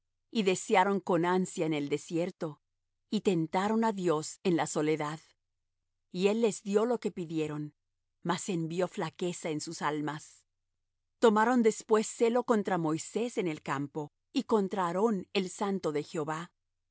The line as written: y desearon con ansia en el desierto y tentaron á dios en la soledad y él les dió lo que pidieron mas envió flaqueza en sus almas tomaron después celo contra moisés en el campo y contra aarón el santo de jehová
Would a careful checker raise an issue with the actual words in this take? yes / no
no